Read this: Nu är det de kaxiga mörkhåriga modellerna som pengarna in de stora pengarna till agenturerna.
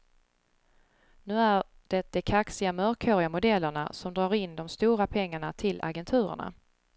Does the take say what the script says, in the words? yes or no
no